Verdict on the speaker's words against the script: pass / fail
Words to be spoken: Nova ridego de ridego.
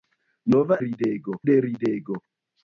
pass